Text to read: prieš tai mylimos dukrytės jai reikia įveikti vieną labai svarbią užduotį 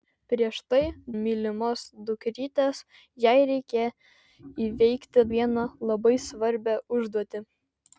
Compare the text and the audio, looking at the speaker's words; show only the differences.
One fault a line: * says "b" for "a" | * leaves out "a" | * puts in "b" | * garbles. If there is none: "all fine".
all fine